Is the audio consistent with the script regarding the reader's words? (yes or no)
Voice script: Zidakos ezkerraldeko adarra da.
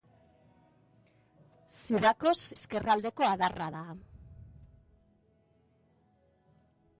yes